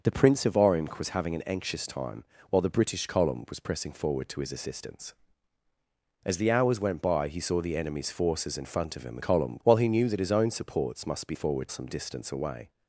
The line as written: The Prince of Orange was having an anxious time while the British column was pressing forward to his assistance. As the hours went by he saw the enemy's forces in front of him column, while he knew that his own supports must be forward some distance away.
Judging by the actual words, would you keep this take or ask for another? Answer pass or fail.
pass